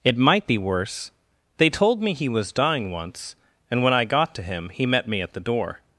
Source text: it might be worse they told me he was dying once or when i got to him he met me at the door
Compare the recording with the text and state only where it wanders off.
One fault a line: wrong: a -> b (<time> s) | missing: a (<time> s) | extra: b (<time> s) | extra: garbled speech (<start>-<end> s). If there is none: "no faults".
wrong: or -> and (3.7 s)